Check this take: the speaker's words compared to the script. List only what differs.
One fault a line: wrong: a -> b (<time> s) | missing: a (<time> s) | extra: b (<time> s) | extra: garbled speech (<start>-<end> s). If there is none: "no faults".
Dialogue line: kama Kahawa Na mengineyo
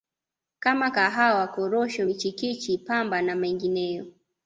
extra: Korosho michikichi Pamba (1.5 s)